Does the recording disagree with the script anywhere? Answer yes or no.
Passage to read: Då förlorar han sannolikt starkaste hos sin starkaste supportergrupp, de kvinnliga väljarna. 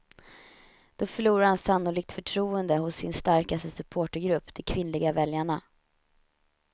yes